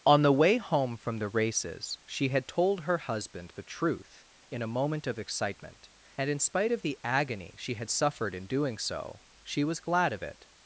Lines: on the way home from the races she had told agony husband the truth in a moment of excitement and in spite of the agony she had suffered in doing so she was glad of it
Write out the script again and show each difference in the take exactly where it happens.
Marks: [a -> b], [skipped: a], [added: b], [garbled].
on the way home from the races she had told [agony -> her] husband the truth in a moment of excitement and in spite of the agony she had suffered in doing so she was glad of it